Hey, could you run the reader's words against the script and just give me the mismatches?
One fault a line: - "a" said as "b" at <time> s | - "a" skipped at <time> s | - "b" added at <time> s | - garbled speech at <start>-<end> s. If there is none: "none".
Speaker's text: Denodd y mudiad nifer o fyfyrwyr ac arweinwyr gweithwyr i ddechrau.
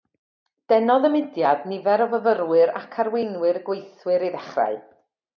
none